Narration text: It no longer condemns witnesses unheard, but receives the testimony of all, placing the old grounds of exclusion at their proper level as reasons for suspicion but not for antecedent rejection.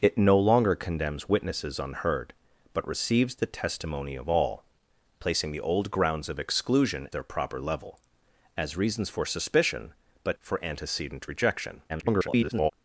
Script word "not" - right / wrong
wrong